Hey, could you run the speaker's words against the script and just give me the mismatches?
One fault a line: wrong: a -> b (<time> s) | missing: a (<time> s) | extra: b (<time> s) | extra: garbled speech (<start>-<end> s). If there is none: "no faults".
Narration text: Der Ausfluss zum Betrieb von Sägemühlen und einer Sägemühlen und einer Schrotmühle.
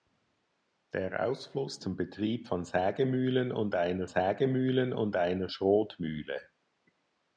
no faults